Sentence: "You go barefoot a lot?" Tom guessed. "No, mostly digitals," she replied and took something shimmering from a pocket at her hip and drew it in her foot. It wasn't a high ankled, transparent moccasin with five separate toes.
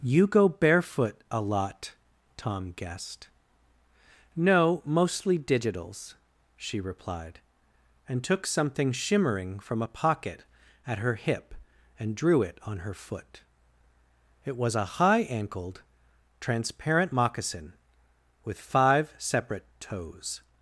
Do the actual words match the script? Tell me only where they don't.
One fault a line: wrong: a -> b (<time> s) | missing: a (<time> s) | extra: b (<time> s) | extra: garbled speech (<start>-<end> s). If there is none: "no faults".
wrong: in -> on (12.6 s)
wrong: wasn't -> was (14.6 s)